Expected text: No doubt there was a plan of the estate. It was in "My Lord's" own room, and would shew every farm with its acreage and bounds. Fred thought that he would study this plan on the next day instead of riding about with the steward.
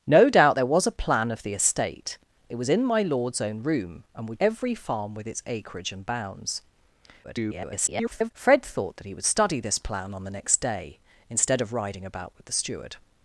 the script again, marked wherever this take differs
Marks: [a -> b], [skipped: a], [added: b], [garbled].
No doubt there was a plan of the estate. It was in "My Lord's" own room, and would [skipped: shew] every farm with its acreage and bounds. [garbled] Fred thought that he would study this plan on the next day instead of riding about with the steward.